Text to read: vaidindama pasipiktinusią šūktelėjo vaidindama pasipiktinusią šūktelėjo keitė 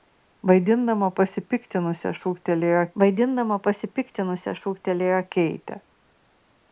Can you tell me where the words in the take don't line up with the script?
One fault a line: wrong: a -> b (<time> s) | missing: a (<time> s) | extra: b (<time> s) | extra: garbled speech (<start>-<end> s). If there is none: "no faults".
no faults